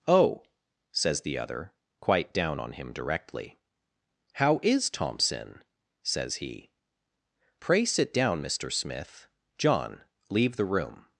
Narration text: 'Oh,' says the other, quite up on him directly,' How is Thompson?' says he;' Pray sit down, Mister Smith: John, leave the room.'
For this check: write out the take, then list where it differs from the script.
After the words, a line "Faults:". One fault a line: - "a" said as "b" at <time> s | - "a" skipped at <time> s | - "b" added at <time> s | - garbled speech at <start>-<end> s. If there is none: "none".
'Oh,' says the other, quite down on him directly,' How is Thompson?' says he;' Pray sit down, Mister Smith: John, leave the room.'
Faults:
- "up" said as "down" at 2.3 s